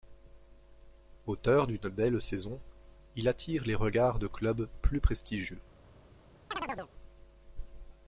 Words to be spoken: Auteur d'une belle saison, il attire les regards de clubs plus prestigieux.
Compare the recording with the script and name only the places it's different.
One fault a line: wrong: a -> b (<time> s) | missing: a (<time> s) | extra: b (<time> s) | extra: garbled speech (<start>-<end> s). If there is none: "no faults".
no faults